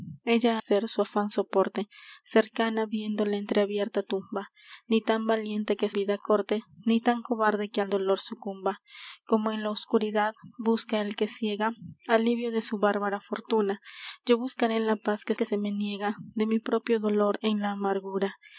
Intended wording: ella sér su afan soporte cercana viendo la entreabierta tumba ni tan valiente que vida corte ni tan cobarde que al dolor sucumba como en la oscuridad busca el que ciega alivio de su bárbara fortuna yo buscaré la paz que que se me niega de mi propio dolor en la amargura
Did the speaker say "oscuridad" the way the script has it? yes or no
yes